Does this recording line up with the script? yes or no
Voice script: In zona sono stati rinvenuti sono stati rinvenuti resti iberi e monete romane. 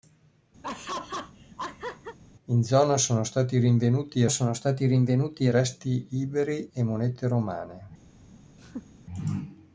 yes